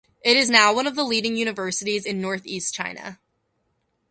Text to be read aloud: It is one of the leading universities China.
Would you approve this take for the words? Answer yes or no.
no